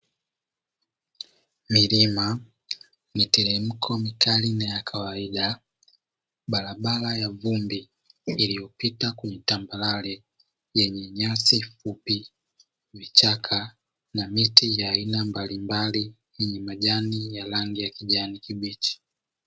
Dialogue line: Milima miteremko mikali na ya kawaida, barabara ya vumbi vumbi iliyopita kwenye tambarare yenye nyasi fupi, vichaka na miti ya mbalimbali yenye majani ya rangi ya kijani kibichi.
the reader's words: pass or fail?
fail